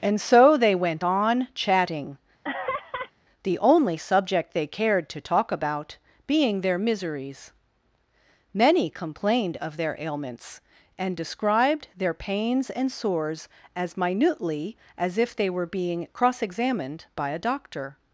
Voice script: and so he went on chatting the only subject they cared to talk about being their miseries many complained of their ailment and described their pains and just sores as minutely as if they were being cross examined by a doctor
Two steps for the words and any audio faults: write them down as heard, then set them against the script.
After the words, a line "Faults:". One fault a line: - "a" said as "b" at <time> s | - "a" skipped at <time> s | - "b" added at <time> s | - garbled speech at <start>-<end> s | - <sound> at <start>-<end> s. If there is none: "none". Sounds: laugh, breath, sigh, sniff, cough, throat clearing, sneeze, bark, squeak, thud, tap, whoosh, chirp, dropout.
and so they went on chatting the only subject they cared to talk about being their miseries many complained of their ailments and described their pains and sores as minutely as if they were being cross examined by a doctor
Faults:
- "he" said as "they" at 0.6 s
- laugh at 2.4-3.1 s
- "ailment" said as "ailments" at 10.0 s
- "just" skipped at 12.9 s